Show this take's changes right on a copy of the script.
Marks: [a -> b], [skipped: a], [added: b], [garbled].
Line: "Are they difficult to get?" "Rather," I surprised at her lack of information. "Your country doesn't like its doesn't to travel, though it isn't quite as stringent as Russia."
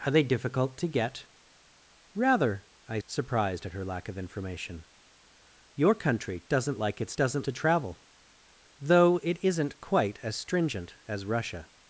"Are they difficult to get?" "Rather," I surprised at her lack of information. "Your country doesn't like its doesn't to travel, though it isn't quite as stringent as Russia."